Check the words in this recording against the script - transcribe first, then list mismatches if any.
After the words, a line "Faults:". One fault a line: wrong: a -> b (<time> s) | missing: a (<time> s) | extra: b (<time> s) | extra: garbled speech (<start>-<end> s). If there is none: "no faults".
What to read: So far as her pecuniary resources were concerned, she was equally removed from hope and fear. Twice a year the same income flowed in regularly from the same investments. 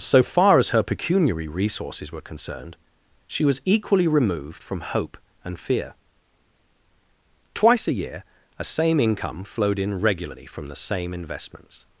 So far as her pecuniary resources were concerned, she was equally removed from hope and fear. Twice a year a same income flowed in regularly from the same investments.
Faults:
wrong: the -> a (8.6 s)